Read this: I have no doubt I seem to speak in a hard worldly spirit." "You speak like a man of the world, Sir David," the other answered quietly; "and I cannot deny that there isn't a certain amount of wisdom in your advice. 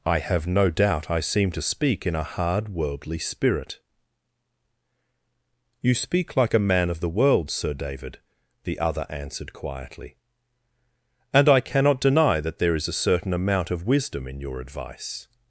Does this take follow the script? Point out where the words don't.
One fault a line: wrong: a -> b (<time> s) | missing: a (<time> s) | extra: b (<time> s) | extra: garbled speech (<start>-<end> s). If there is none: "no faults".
wrong: isn't -> is (12.7 s)